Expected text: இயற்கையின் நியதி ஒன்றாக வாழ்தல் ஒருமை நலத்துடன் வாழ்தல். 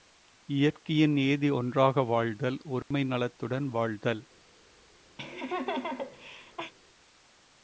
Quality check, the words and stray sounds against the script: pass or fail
fail